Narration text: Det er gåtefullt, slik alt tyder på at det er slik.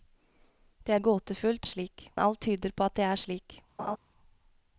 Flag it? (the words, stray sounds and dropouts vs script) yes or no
yes